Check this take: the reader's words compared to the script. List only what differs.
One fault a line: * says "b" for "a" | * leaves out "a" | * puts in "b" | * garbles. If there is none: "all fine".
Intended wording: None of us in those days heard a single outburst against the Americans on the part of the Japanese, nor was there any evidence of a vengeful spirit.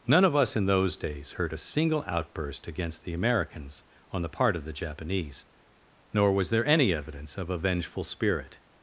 all fine